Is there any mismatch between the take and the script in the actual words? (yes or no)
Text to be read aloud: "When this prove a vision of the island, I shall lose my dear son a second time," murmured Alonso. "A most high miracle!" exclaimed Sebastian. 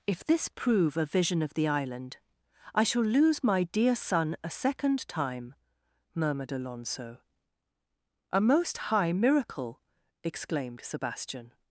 yes